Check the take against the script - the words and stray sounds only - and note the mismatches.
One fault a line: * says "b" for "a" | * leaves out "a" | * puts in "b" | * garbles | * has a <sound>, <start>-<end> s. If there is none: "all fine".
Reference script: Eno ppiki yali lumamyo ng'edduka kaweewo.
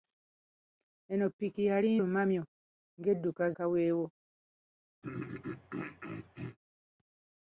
* has a throat clearing, 5.0-6.6 s